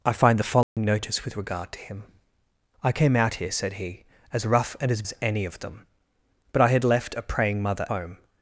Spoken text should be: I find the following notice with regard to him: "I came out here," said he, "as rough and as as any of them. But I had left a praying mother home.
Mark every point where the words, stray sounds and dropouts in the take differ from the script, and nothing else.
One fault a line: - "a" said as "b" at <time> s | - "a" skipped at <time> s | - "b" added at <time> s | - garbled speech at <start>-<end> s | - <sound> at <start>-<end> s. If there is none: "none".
- dropout at 0.6-0.8 s